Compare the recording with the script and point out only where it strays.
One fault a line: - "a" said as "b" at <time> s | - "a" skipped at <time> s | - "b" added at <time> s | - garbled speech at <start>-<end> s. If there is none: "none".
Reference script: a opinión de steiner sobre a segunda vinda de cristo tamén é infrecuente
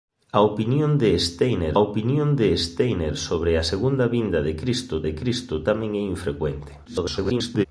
- "opinión de steiner" added at 1.8 s
- "de cristo" added at 5.0 s
- garbled speech at 6.9-7.7 s